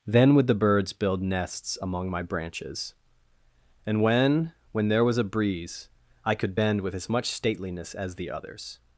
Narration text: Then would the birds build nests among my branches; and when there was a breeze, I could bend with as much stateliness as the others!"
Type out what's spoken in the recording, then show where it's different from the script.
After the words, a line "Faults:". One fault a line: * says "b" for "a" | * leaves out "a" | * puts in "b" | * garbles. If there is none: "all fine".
Then would the birds build nests among my branches; and when when there was a breeze, I could bend with as much stateliness as the others!"
Faults:
* puts in "when"